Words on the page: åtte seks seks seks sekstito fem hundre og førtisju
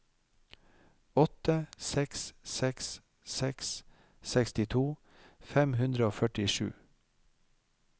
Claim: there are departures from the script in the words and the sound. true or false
false